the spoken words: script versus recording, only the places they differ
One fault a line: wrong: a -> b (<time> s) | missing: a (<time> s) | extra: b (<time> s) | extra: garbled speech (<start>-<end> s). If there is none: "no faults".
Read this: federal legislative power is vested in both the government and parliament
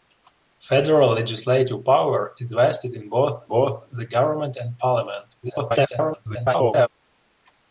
extra: both (3.5 s)
extra: garbled speech (5.4-6.9 s)